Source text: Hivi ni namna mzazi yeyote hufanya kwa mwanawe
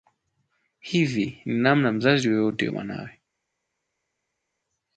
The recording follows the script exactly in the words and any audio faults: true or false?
false